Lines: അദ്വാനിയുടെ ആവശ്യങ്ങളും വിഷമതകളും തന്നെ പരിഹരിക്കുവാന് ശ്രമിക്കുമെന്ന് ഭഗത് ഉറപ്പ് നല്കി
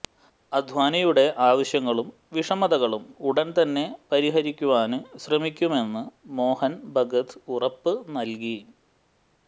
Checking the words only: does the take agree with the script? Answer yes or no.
no